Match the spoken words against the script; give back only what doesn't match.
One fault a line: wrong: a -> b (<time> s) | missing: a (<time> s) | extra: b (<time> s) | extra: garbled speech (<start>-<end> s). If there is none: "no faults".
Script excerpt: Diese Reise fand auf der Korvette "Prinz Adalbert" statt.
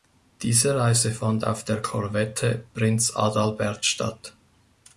no faults